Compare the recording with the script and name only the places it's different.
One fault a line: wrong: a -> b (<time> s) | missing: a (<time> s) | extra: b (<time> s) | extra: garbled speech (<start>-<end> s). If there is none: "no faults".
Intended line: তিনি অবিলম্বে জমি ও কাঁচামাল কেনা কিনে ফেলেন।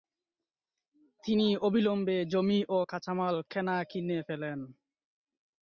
no faults